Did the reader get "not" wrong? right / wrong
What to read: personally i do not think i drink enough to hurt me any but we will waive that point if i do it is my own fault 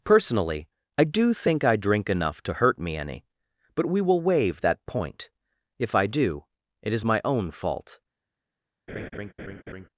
wrong